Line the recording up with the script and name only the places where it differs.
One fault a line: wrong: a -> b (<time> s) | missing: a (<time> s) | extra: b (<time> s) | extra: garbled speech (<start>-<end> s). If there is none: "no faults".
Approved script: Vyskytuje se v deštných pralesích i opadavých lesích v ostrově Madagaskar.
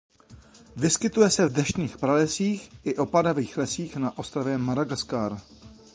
wrong: v -> na (3.9 s)